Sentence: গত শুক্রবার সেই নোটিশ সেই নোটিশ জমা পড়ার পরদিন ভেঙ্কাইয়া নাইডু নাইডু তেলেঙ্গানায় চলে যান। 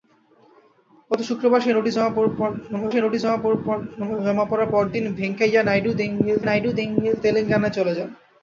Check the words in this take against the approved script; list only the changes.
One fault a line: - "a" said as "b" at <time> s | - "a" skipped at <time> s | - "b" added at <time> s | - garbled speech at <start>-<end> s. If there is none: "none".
none